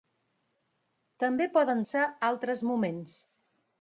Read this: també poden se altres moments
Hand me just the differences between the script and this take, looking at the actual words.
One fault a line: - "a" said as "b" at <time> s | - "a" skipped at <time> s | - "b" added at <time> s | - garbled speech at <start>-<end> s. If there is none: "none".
none